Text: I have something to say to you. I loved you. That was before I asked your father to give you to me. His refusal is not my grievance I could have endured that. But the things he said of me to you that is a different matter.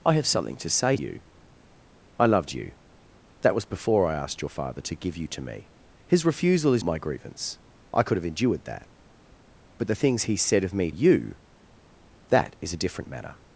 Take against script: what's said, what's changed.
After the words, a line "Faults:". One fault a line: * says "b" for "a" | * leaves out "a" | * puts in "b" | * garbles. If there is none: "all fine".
I have something to say you. I loved you. That was before I asked your father to give you to me. His refusal is my grievance I could have endured that. But the things he said of me you that is a different matter.
Faults:
* leaves out "to"
* leaves out "not"
* leaves out "to"